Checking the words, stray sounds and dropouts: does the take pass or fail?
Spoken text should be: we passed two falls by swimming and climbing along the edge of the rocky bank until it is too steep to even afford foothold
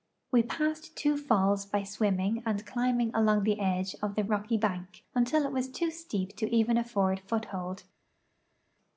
fail